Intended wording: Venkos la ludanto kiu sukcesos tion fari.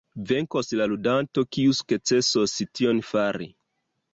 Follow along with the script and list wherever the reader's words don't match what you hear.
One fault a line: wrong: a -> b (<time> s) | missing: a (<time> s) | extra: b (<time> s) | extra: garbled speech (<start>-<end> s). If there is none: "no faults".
no faults